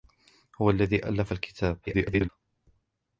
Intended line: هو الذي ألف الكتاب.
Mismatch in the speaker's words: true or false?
true